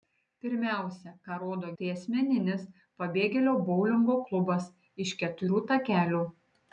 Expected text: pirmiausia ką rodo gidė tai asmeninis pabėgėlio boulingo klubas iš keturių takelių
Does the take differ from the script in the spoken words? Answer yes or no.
yes